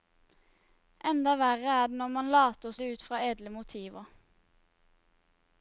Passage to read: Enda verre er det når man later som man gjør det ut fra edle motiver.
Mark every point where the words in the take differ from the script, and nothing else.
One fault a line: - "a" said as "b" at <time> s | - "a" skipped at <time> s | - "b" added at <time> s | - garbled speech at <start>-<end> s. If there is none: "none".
- "som man gjør" skipped at 2.7 s